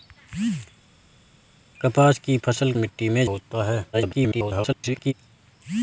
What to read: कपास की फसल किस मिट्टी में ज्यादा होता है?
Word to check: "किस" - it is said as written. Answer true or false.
false